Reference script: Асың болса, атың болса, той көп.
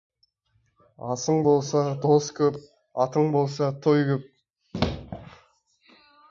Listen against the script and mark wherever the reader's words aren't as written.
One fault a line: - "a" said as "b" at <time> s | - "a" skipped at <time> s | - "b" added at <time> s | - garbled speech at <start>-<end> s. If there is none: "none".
- "дос көп" added at 2.1 s